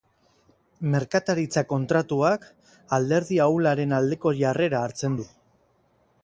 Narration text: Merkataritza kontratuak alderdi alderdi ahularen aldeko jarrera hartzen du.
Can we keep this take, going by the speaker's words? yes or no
no